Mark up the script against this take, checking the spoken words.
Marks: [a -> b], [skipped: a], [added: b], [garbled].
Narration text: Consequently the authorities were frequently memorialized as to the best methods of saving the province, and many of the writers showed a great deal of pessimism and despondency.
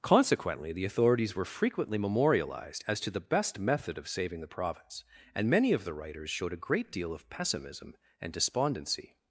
Consequently the authorities were frequently memorialized as to the best [methods -> method] of saving the province, and many of the writers showed a great deal of pessimism and despondency.